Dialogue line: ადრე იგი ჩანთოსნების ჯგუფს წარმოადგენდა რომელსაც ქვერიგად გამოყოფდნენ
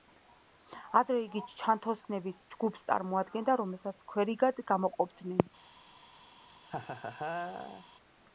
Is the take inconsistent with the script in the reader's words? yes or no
no